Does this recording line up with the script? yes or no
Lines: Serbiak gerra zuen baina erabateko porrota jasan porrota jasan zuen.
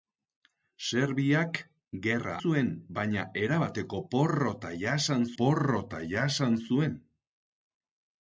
yes